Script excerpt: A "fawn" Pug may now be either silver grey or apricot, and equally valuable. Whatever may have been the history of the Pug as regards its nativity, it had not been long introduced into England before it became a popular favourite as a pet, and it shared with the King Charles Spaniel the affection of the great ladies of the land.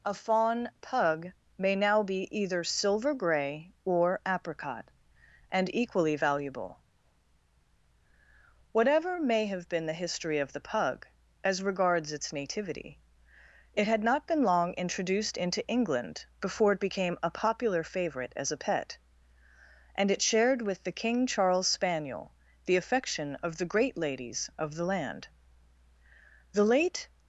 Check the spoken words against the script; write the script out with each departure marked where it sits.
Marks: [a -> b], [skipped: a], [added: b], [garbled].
A "fawn" Pug may now be either silver grey or apricot, and equally valuable. Whatever may have been the history of the Pug as regards its nativity, it had not been long introduced into England before it became a popular favourite as a pet, and it shared with the King Charles Spaniel the affection of the great ladies of the land. [added: The late]